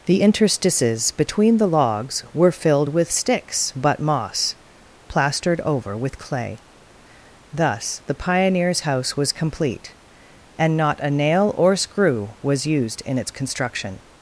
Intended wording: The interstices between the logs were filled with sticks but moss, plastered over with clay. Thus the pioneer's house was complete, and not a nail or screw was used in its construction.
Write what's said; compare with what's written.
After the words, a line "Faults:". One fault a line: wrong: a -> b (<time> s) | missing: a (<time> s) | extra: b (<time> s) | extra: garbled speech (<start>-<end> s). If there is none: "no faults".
The interstices between the logs were filled with sticks but moss, plastered over with clay. Thus the pioneer's house was complete, and not a nail or screw was used in its construction.
Faults:
no faults